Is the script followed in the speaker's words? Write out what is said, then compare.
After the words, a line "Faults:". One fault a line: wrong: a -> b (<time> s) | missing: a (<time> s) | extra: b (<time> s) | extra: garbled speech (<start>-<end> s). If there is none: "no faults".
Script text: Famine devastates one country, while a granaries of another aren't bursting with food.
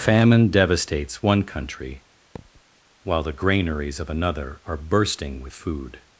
Famine devastates one country, while the granaries of another are bursting with food.
Faults:
wrong: a -> the (3.2 s)
wrong: aren't -> are (4.6 s)